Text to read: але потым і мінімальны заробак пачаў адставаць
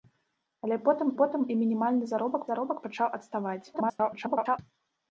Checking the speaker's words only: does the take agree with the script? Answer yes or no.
no